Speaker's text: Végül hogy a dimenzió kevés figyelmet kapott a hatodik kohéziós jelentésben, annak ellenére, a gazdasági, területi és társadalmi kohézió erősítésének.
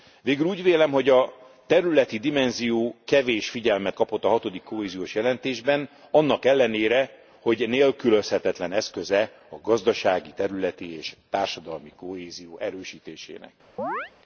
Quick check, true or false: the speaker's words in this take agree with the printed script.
false